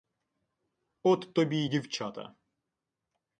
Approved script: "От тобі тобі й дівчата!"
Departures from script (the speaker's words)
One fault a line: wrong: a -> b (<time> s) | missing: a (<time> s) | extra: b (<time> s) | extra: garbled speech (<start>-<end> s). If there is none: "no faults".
missing: тобі (1.6 s)